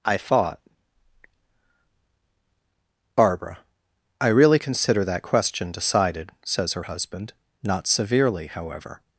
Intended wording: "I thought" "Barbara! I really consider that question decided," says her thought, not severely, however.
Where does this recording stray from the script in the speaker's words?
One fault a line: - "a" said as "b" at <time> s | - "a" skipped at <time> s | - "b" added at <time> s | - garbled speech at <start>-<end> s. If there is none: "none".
- "thought" said as "husband" at 6.8 s